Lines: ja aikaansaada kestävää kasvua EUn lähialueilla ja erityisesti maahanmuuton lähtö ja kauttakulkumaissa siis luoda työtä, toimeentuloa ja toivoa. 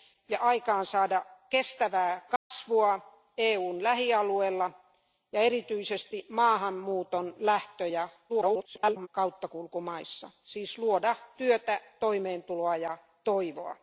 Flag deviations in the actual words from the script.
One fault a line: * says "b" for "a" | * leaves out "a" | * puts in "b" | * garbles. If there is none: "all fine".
* garbles